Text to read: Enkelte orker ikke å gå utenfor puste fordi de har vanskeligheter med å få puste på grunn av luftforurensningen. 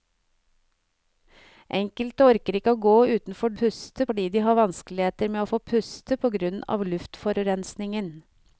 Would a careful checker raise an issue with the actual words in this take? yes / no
no